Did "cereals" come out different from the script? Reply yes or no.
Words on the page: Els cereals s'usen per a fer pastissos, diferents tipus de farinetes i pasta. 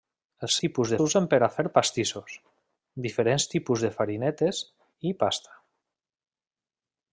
yes